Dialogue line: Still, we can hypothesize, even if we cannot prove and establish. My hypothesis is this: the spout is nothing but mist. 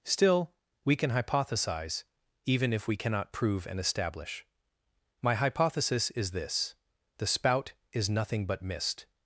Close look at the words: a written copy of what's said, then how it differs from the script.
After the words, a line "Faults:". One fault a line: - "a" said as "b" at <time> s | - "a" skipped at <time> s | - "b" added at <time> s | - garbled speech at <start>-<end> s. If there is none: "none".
Still, we can hypothesize, even if we cannot prove and establish. My hypothesis is this: the spout is nothing but mist.
Faults:
none